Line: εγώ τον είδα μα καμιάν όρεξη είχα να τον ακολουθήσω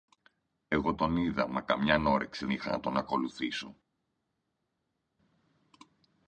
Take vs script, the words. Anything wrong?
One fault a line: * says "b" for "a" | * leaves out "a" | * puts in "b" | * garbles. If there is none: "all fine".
all fine